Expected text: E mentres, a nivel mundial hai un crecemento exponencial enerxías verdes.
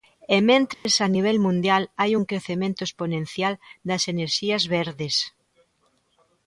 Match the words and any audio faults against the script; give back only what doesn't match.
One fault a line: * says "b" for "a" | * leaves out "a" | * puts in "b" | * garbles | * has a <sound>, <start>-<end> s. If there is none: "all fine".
* has a dropout, 0.7-0.9 s
* puts in "das"